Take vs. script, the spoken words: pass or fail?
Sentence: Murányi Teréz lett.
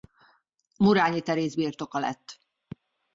fail